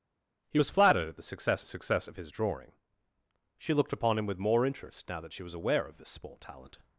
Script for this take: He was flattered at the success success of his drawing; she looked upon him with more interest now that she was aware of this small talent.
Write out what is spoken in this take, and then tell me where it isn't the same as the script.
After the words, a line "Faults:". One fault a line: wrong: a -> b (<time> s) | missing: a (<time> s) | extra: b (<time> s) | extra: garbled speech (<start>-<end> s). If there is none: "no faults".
He was flattered at the success success of his drawing; she looked upon him with more interest now that she was aware of this small talent.
Faults:
no faults